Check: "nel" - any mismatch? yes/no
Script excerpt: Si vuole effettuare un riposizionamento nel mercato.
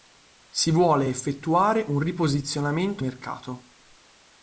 yes